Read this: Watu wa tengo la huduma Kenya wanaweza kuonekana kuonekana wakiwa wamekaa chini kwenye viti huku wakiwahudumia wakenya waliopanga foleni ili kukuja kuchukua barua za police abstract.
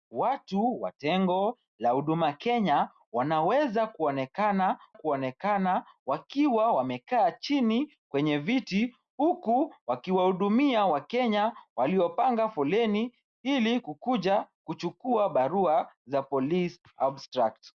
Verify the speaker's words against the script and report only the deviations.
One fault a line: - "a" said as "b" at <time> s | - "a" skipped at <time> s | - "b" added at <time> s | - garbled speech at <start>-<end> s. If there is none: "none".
none